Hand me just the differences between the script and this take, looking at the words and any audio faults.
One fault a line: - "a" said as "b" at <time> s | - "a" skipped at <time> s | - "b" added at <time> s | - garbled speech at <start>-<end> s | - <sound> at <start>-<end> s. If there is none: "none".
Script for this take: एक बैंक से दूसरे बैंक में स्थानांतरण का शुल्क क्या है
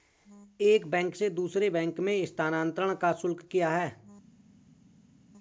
none